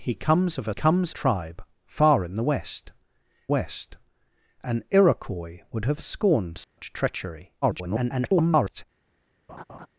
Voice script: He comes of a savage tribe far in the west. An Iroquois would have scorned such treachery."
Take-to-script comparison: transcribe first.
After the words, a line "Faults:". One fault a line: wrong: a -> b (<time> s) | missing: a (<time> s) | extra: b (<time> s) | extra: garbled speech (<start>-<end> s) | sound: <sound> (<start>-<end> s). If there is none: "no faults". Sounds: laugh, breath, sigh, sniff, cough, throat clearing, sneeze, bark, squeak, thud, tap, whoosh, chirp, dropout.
He comes of a comes tribe far in the west west. An Iroquois would have scorned such treachery." [garbled]
Faults:
wrong: savage -> comes (0.7 s)
extra: west (3.5 s)
sound: dropout (6.6-6.8 s)
extra: garbled speech (7.6-8.8 s)
sound: laugh (9.5-9.9 s)